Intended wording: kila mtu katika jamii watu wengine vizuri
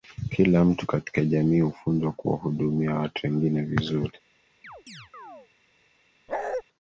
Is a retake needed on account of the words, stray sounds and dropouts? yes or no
yes